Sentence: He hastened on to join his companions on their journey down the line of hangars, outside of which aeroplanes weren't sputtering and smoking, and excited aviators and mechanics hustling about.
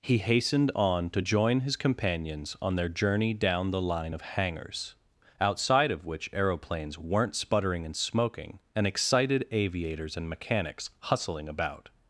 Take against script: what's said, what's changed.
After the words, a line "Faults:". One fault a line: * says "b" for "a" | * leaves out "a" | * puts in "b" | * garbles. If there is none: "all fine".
He hastened on to join his companions on their journey down the line of hangars, outside of which aeroplanes weren't sputtering and smoking, and excited aviators and mechanics hustling about.
Faults:
all fine